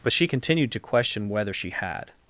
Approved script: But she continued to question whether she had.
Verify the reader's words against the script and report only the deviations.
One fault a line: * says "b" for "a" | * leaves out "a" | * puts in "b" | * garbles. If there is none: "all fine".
all fine